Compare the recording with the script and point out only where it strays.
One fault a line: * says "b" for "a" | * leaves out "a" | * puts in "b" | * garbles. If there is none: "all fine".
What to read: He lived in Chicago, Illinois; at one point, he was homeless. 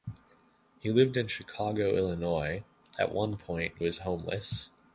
* leaves out "he"